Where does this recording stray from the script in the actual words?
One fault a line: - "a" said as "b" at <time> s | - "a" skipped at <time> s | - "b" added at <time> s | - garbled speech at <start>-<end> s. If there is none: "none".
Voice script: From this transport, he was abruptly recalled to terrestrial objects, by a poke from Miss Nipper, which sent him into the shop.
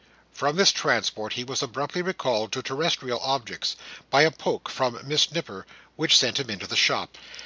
none